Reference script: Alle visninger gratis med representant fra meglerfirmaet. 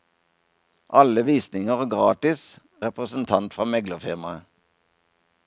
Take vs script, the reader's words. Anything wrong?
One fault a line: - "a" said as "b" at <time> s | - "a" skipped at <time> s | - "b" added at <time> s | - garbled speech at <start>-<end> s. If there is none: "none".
- "med" skipped at 2.6 s